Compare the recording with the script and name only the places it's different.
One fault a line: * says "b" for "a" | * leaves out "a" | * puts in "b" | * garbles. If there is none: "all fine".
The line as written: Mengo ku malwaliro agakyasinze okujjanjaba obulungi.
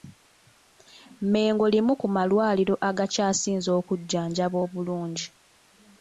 * puts in "limu"